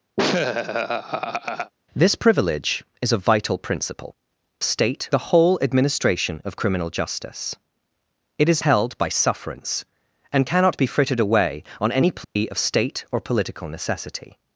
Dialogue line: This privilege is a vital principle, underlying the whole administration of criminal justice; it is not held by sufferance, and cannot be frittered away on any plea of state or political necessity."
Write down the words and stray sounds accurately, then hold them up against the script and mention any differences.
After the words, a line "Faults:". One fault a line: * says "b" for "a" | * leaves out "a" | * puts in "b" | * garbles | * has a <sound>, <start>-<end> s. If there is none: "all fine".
This privilege is a vital principle, state the whole administration of criminal justice; it is held by sufferance, and cannot be frittered away on any plea of state or political necessity."
Faults:
* has a laugh, 0.2-1.7 s
* says "state" for "underlying"
* leaves out "not"
* has a dropout, 12.2-12.4 s